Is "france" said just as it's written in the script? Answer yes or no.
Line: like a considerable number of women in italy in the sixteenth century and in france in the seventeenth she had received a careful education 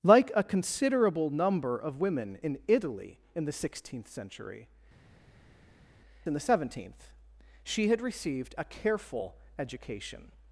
no